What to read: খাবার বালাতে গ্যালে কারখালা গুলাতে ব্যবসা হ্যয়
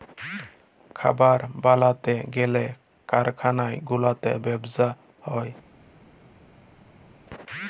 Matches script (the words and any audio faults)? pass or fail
pass